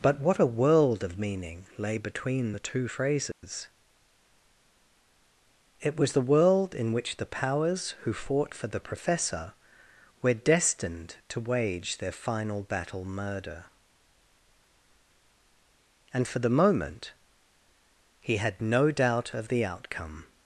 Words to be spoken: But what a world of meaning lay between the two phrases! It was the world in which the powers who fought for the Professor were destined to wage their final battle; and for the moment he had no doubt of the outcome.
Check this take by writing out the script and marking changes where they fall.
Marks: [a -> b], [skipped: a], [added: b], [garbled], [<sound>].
But what a world of meaning lay between the two phrases! [dropout] It was the world in which the powers who fought for the Professor were destined to wage their final battle; [added: murder] and for the moment he had no doubt of the outcome.